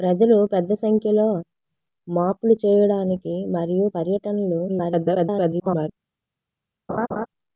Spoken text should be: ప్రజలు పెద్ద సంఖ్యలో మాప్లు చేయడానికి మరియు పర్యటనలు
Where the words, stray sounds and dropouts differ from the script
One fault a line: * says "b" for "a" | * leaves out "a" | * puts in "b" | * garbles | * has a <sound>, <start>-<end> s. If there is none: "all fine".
* garbles
* has a laugh, 6.9-7.3 s